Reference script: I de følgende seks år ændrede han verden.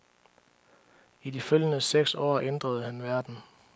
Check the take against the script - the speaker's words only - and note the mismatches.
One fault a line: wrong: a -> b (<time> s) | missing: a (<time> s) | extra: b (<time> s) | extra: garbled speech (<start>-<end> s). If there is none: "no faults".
no faults